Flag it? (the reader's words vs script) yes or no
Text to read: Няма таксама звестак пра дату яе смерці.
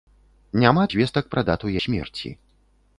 yes